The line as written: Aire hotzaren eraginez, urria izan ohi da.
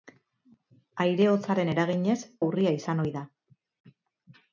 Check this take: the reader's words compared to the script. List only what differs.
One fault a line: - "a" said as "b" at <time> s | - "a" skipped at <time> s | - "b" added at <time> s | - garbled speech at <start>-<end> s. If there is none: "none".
none